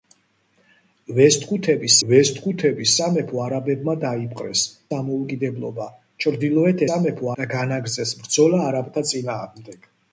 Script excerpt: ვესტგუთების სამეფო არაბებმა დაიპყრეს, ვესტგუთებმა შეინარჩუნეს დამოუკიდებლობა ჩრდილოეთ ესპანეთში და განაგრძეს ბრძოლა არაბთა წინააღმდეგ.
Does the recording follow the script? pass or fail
fail